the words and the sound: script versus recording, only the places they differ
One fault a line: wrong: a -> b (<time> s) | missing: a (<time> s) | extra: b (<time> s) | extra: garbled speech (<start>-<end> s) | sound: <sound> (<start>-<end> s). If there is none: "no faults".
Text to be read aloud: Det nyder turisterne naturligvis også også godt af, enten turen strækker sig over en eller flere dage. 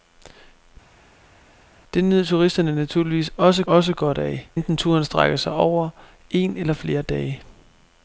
no faults